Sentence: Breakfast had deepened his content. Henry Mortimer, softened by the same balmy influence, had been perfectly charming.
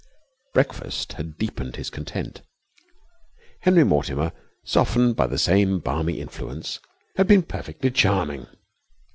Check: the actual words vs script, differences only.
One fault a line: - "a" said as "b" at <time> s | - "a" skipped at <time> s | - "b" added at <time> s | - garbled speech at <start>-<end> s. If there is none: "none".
none